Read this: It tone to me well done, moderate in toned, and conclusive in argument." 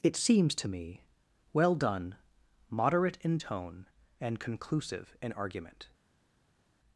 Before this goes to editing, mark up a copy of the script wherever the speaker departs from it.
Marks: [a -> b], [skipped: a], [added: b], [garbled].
It [tone -> seems] to me well done, moderate in [toned, -> tone] and conclusive in argument."